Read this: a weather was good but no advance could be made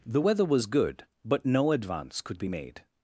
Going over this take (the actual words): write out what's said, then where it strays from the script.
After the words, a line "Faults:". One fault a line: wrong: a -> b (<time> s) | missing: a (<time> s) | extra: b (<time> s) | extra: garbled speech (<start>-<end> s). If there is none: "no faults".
the weather was good but no advance could be made
Faults:
wrong: a -> the (0.1 s)